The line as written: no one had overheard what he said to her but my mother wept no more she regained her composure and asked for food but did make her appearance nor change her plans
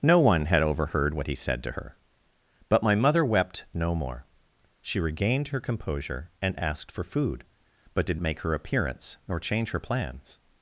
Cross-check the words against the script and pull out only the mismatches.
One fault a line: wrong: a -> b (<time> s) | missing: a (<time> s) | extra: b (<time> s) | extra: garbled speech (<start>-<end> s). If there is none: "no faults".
no faults